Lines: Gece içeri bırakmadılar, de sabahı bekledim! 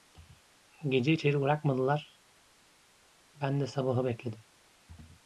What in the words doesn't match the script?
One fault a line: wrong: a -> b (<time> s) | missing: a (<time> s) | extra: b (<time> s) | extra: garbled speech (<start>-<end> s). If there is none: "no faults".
extra: ben (3.4 s)